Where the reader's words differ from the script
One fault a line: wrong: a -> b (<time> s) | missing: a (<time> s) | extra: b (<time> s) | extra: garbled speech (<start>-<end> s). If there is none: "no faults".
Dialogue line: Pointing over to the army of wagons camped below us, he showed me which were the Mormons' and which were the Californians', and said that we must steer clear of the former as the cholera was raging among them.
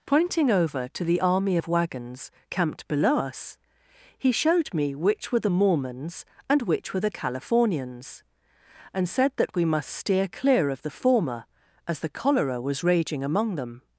no faults